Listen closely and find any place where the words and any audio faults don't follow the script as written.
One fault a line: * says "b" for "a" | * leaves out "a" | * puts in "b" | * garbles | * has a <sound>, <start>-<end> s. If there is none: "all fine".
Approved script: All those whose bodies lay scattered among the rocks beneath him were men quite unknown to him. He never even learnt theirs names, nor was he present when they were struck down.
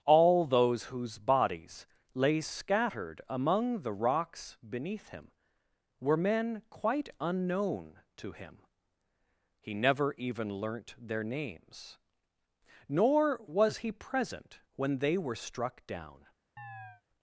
* says "their" for "theirs"
* has a chirp, 16.6-17.0 s